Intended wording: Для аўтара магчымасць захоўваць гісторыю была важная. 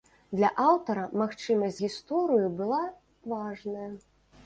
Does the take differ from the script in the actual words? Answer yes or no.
yes